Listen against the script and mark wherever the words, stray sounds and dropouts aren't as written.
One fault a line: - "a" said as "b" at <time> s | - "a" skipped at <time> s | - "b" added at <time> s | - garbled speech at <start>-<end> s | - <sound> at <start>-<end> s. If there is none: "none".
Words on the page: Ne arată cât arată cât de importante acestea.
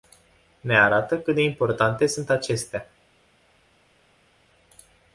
- "arată cât" skipped at 1.4 s
- "sunt" added at 2.1 s